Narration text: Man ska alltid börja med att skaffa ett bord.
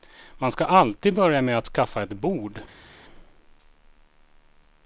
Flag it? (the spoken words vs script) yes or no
no